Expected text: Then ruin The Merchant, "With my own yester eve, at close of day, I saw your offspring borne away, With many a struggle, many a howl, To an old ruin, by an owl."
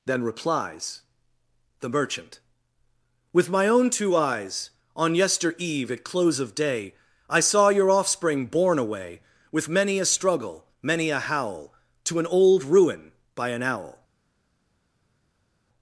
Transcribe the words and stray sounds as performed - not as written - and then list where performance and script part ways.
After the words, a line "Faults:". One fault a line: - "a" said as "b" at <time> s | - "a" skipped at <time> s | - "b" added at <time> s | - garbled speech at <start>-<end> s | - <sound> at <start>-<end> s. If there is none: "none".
Then replies The Merchant, "With my own two eyes, On yester eve, at close of day, I saw your offspring borne away, With many a struggle, many a howl, To an old ruin, by an owl."
Faults:
- "ruin" said as "replies" at 0.2 s
- "two eyes On" added at 3.9 s